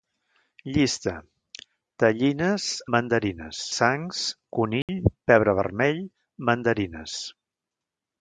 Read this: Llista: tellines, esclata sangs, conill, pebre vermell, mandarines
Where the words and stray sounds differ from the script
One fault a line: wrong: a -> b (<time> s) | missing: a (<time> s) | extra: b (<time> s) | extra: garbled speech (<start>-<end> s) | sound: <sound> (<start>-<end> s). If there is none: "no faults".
wrong: esclata -> mandarines (3.0 s)
sound: dropout (4.8-4.9 s)